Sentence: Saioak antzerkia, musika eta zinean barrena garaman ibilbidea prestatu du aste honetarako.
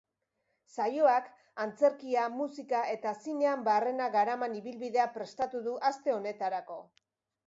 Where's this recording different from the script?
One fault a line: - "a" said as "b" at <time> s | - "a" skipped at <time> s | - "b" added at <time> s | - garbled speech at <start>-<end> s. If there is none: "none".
none